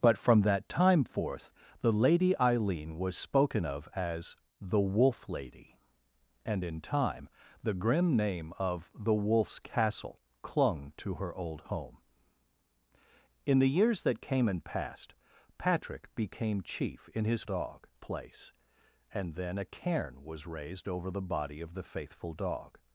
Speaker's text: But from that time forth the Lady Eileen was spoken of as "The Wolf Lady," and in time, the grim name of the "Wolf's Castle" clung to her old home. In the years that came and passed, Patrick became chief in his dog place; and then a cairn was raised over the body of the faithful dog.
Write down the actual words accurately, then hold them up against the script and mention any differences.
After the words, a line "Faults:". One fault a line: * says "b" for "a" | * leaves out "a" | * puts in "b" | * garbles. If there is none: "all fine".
But from that time forth the Lady Eileen was spoken of as "The Wolf Lady," and in time, the grim name of the "Wolf's Castle" clung to her old home. In the years that came and passed, Patrick became chief in his dog place; and then a cairn was raised over the body of the faithful dog.
Faults:
all fine